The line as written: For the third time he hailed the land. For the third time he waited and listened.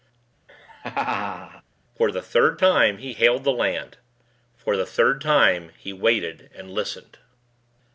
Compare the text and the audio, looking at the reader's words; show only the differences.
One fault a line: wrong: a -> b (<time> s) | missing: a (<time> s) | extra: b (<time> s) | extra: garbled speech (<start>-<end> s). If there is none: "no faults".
no faults